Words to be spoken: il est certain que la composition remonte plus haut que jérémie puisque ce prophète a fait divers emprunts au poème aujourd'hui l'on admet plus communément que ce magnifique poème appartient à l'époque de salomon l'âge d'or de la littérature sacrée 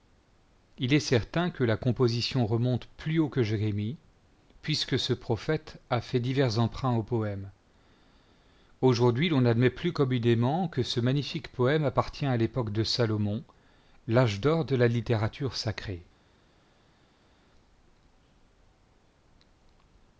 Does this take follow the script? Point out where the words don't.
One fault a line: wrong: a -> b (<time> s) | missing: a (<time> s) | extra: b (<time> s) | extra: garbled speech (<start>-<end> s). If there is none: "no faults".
no faults